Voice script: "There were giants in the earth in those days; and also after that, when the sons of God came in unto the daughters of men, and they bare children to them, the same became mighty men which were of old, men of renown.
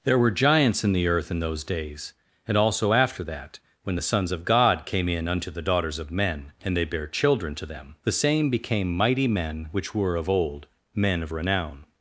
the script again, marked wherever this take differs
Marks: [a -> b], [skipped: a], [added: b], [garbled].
"There were giants in the earth in those days; and also after that, when the sons of God came in unto the daughters of men, and they bare children to them, the same became mighty men which were of old, men of renown.